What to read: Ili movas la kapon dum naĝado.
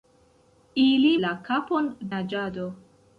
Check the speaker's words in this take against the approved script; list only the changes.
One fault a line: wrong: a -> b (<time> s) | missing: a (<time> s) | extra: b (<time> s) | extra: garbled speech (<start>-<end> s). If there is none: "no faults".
missing: movas (1.1 s)
missing: dum (1.9 s)